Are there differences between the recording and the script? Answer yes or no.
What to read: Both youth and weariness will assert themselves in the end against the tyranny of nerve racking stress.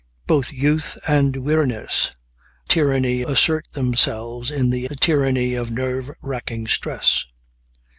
yes